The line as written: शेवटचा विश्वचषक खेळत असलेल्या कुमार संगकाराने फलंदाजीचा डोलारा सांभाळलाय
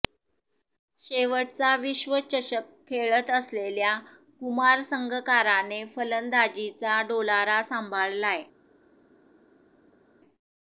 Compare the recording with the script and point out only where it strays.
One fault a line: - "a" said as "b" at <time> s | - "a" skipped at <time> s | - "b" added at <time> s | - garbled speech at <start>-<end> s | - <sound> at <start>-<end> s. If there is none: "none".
none